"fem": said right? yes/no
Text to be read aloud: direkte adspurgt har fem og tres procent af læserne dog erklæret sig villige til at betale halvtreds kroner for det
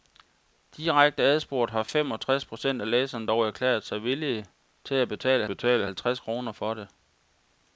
yes